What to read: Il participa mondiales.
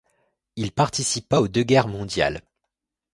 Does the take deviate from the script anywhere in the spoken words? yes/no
yes